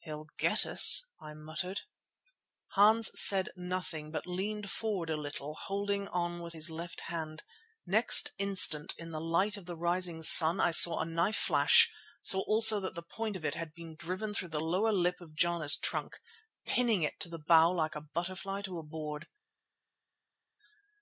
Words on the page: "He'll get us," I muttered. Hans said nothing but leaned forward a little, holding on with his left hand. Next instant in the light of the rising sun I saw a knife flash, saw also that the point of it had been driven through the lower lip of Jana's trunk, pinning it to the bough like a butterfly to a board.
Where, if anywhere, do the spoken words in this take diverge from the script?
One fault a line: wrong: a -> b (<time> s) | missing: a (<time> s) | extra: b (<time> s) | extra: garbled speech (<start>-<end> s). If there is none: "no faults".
no faults